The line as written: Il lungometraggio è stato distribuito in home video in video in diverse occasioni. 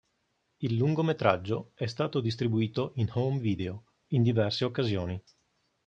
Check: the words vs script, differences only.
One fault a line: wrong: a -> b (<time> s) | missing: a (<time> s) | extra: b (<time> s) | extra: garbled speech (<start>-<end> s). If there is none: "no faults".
missing: video in (4.2 s)